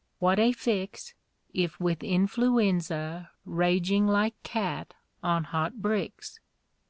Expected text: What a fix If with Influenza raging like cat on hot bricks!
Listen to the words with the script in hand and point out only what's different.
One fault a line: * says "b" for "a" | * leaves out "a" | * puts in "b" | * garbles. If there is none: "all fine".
all fine